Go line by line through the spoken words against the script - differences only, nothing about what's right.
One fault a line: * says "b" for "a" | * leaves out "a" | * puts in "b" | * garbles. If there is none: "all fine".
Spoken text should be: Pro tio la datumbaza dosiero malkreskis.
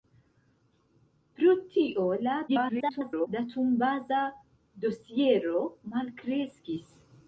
* garbles